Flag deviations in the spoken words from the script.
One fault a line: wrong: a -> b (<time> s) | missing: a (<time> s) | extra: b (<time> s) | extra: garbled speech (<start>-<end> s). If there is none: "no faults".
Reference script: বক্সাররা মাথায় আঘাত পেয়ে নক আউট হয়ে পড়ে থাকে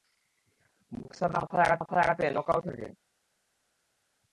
extra: মাথায় আঘাত (1.8 s)
missing: হয়ে পড়ে (2.6 s)